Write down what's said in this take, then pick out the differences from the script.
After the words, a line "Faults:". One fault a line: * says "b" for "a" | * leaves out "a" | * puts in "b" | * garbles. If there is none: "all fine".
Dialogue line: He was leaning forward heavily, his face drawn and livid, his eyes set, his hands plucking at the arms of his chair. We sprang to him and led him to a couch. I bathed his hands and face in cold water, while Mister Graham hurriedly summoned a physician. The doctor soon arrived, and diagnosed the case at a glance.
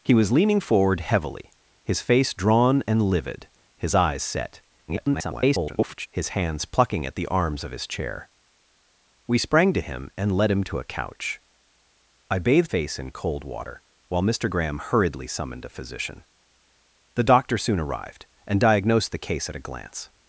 He was leaning forward heavily, his face drawn and livid, his eyes set, [garbled] his hands plucking at the arms of his chair. We sprang to him and led him to a couch. I bathed face in cold water, while Mister Graham hurriedly summoned a physician. The doctor soon arrived, and diagnosed the case at a glance.
Faults:
* garbles
* leaves out "his hands and"